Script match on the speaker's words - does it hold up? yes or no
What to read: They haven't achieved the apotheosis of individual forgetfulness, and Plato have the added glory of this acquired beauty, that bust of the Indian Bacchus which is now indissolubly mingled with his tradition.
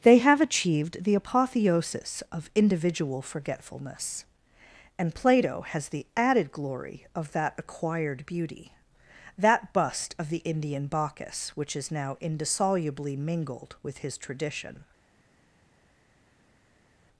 no